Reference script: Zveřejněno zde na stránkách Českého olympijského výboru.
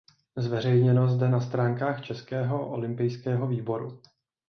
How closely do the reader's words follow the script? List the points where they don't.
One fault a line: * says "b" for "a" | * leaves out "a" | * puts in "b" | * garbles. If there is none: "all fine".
all fine